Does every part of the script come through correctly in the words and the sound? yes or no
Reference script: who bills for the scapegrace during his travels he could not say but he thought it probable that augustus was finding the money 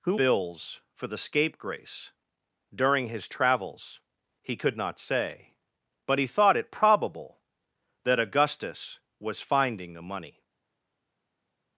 yes